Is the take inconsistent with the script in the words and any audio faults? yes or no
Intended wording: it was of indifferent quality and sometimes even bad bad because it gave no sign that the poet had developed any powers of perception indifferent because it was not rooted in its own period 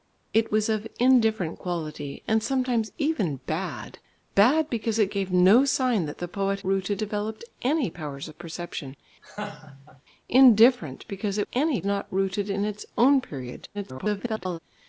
yes